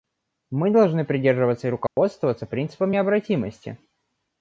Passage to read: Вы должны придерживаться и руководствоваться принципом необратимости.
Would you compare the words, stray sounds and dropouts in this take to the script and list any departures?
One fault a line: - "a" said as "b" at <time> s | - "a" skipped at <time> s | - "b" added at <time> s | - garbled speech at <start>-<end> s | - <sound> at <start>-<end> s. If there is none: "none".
- "Вы" said as "Мы" at 0.5 s
- dropout at 1.9-2.0 s